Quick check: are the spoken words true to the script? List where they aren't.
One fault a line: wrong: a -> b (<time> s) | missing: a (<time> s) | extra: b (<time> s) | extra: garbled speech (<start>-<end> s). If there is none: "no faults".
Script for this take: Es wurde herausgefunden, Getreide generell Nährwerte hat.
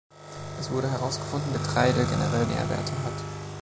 no faults